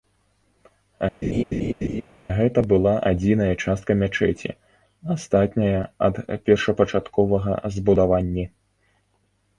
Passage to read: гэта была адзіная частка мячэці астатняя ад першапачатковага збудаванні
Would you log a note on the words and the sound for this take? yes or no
yes